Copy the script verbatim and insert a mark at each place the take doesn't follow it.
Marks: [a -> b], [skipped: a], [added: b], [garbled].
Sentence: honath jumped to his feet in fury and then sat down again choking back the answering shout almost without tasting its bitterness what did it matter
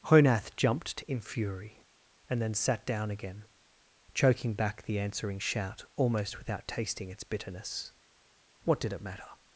honath jumped to [skipped: his feet] in fury and then sat down again choking back the answering shout almost without tasting its bitterness what did it matter